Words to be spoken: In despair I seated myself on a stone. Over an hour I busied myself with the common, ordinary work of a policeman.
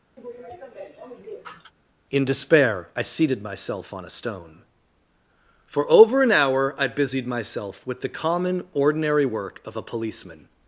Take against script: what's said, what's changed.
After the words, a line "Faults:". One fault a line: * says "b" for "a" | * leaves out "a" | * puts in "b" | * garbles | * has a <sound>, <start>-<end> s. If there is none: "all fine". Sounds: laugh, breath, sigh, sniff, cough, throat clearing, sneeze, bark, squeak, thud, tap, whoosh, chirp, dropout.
In despair I seated myself on a stone. For over an hour I busied myself with the common, ordinary work of a policeman.
Faults:
* has a sneeze, 0.2-1.7 s
* puts in "For"